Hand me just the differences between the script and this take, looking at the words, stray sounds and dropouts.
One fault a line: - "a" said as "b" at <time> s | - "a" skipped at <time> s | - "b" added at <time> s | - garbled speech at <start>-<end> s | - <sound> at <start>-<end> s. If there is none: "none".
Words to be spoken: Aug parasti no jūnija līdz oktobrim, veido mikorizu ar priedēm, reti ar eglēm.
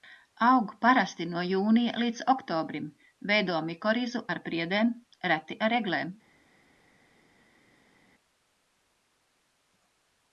none